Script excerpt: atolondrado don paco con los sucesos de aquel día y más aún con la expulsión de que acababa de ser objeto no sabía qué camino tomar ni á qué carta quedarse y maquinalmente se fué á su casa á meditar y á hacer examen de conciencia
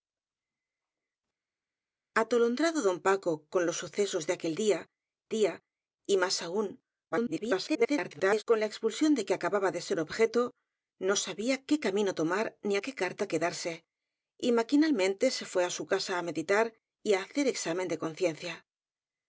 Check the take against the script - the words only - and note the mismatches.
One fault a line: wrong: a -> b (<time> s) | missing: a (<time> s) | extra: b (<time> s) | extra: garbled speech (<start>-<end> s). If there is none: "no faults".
extra: día (5.4 s)
extra: garbled speech (7.1-8.4 s)